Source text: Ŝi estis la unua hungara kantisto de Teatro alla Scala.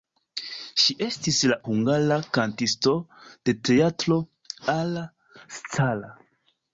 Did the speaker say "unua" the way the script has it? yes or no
no